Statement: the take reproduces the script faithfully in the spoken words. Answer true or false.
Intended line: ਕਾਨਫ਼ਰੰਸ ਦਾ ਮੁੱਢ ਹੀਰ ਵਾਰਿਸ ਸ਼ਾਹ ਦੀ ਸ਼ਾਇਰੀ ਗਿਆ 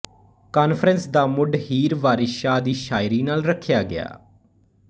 false